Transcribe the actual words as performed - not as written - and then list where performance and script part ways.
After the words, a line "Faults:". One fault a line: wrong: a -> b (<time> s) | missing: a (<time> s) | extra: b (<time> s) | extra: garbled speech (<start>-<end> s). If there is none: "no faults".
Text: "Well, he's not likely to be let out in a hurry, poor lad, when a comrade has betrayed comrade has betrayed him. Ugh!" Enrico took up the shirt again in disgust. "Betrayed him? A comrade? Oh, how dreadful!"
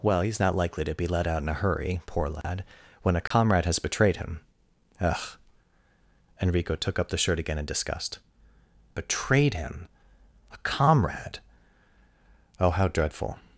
"Well, he's not likely to be let out in a hurry, poor lad, when a comrade has betrayed him. Ugh!" Enrico took up the shirt again in disgust. "Betrayed him? A comrade? Oh, how dreadful!"
Faults:
missing: comrade has betrayed (4.2 s)